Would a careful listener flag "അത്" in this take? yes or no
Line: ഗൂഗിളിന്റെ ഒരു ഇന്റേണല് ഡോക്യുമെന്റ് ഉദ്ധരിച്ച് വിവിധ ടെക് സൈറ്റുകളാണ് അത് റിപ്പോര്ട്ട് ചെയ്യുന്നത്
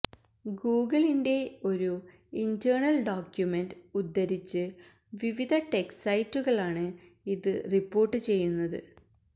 yes